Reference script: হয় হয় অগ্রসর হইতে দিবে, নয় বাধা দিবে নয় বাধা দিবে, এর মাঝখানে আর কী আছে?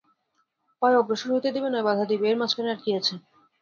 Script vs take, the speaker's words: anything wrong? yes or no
yes